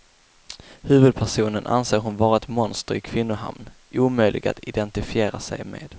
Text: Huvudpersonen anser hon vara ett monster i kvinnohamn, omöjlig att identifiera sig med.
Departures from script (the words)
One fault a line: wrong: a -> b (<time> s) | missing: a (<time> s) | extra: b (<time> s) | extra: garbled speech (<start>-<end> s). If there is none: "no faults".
no faults